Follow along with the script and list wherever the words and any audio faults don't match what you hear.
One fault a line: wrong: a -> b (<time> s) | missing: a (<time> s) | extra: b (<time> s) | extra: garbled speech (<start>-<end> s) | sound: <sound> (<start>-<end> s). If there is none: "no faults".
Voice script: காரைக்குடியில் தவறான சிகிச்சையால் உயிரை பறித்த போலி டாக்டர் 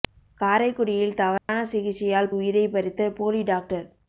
sound: dropout (1.4-1.5 s)